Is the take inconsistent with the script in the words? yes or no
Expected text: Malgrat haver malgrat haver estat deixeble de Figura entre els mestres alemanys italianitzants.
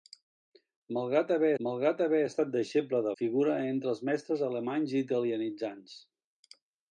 no